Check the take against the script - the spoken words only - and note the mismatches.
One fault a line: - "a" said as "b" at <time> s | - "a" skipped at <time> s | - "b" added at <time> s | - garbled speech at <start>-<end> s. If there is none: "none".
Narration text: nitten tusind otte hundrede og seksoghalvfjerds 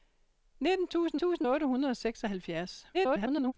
- "tusind" added at 1.1 s
- garbled speech at 2.9-3.5 s